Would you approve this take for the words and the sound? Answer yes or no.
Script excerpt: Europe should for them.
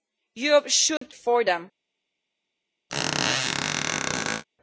no